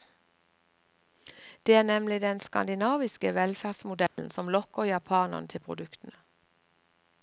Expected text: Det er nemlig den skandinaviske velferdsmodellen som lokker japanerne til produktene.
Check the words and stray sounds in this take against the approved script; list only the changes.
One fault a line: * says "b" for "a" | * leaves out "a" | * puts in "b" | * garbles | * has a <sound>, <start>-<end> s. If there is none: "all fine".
* has a dropout, 4.1-4.2 s